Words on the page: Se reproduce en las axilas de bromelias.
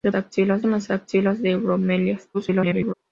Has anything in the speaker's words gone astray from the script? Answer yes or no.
yes